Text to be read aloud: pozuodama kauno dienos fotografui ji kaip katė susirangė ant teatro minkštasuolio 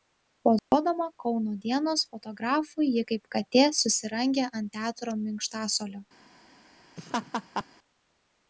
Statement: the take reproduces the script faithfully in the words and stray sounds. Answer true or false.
false